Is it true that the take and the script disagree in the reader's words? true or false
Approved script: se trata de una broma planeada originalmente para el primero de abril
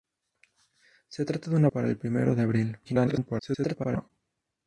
true